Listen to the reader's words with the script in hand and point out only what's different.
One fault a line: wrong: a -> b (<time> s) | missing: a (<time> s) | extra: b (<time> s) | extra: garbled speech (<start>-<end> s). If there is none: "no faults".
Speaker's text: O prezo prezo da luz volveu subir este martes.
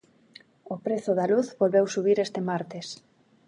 missing: prezo (1.1 s)